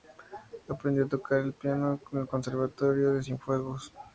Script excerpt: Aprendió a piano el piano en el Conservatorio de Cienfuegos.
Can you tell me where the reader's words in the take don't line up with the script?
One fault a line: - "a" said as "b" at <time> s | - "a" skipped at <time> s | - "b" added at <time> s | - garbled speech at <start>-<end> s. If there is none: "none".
- "piano" said as "tocar" at 1.1 s